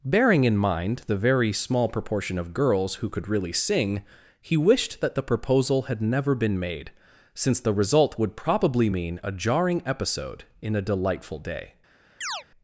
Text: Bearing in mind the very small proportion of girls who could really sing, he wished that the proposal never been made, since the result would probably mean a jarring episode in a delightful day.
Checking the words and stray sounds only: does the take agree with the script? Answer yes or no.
no